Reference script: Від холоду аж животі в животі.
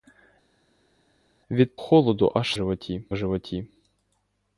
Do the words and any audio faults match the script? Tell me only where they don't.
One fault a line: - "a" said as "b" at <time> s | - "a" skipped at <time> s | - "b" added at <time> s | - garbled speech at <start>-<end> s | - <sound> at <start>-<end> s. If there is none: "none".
none